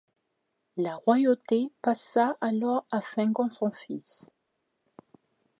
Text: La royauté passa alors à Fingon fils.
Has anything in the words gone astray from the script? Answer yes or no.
yes